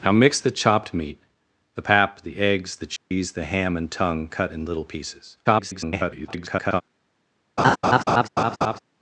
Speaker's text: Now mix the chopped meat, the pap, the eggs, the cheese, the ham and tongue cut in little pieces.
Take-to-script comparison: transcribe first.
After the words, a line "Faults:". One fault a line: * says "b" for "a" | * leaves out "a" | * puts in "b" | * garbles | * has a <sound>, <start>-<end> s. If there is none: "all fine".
Now mix the chopped meat, the pap, the eggs, the cheese, the ham and tongue cut in little pieces. [garbled]
Faults:
* has a dropout, 3.0-3.1 s
* garbles
* has a laugh, 7.6-8.8 s